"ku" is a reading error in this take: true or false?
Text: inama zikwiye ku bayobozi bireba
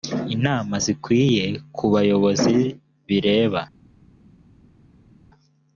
false